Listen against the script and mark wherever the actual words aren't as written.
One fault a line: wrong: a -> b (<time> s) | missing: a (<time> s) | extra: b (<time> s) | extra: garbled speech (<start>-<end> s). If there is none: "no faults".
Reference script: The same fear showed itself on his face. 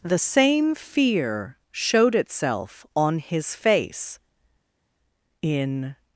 extra: In (5.4 s)